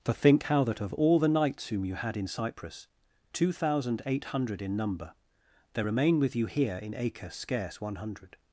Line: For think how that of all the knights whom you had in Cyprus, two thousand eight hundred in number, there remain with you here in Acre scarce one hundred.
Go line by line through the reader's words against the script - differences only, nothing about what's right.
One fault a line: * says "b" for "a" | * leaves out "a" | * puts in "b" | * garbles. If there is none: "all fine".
all fine